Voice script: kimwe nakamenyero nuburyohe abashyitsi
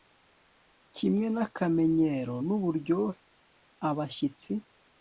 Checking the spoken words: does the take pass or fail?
pass